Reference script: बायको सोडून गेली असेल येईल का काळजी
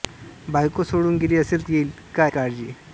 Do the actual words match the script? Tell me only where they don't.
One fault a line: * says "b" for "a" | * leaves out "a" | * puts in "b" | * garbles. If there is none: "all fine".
all fine